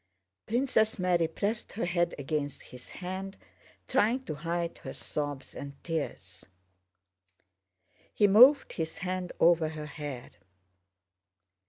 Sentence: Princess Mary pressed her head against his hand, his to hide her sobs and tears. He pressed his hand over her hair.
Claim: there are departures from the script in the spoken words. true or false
true